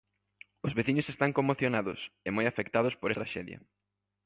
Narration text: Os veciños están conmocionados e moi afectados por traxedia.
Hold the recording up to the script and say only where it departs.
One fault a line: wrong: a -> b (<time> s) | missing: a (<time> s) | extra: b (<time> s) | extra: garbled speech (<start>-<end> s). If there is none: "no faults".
no faults